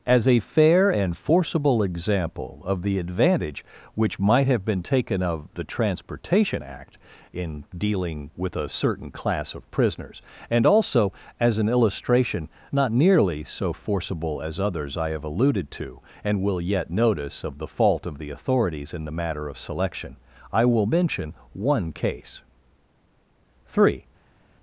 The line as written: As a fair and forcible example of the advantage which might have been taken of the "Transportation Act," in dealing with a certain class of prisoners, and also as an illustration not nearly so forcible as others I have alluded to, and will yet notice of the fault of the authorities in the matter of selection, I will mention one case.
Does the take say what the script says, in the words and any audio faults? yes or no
no